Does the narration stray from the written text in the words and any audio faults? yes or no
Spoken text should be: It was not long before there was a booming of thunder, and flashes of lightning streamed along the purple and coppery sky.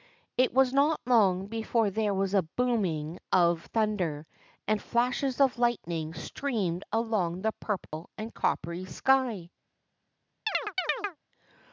yes